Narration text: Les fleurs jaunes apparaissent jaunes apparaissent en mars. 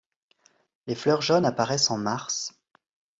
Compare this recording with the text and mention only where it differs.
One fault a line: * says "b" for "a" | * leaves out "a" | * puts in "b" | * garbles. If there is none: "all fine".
* leaves out "jaunes apparaissent"